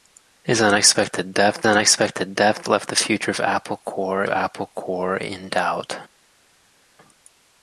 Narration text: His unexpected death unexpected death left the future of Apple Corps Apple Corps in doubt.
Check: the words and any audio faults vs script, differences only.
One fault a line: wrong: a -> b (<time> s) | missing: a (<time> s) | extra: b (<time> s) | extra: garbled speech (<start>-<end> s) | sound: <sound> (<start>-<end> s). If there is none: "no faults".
no faults